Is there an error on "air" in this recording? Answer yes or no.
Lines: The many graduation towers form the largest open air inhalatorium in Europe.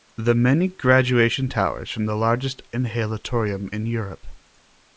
yes